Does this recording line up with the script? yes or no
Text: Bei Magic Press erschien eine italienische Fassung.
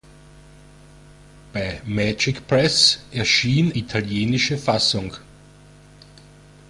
no